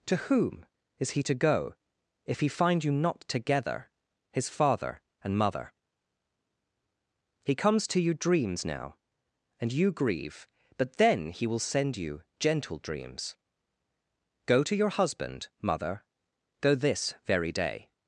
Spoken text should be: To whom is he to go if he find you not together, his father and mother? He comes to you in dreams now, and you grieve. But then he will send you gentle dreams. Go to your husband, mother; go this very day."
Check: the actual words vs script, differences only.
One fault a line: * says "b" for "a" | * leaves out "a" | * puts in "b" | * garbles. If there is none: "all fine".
* leaves out "in"